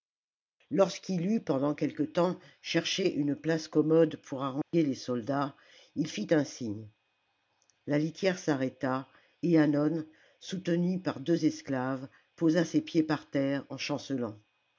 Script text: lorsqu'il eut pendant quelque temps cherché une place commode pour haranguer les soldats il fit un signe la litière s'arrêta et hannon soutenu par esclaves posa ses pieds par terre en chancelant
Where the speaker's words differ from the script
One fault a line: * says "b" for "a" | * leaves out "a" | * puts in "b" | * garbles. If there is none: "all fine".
* puts in "deux"